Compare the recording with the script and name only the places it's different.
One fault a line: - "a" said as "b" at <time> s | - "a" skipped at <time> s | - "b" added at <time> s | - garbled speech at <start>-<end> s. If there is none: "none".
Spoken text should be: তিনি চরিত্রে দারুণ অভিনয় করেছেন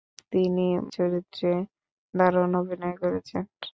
none